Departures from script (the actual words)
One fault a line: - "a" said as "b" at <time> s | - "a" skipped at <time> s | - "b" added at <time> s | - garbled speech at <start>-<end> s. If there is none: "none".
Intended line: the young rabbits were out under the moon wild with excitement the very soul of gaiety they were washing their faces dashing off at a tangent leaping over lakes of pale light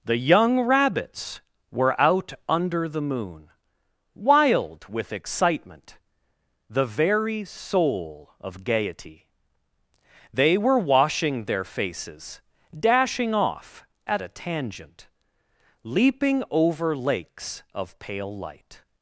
none